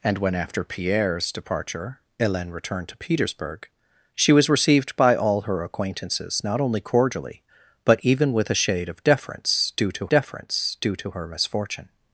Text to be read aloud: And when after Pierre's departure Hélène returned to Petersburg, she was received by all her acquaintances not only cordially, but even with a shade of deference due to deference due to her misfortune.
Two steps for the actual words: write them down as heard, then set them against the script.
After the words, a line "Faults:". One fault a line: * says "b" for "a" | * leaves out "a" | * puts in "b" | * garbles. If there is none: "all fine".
And when after Pierre's departure Hélène returned to Petersburg, she was received by all her acquaintances not only cordially, but even with a shade of deference due to deference due to her misfortune.
Faults:
all fine